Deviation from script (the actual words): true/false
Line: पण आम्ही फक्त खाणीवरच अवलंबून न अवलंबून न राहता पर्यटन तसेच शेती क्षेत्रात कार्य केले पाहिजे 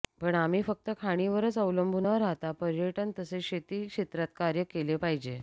true